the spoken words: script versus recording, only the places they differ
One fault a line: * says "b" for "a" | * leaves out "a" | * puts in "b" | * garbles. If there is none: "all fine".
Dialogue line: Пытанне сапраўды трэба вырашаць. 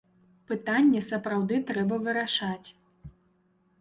all fine